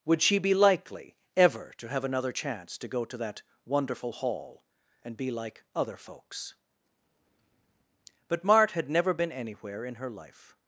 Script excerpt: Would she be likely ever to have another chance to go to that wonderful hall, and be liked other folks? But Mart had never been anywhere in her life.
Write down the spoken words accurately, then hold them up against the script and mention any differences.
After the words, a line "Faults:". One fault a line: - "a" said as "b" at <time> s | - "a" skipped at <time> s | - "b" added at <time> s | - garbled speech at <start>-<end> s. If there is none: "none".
Would she be likely ever to have another chance to go to that wonderful hall, and be like other folks? But Mart had never been anywhere in her life.
Faults:
- "liked" said as "like" at 5.3 s